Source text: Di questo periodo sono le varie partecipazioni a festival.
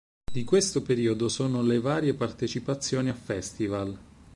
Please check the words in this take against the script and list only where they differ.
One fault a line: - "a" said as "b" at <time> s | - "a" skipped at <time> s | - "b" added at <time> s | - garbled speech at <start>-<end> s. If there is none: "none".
none